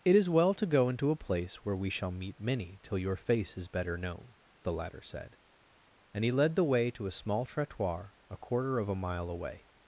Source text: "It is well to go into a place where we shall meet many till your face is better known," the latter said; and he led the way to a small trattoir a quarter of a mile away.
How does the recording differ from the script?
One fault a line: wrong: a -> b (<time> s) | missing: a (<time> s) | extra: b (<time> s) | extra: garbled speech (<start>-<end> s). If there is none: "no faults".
no faults